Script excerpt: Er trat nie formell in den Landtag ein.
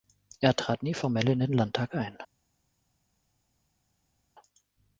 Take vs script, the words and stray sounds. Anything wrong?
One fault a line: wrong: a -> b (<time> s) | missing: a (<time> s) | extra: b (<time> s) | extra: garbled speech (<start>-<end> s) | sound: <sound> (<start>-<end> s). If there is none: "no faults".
no faults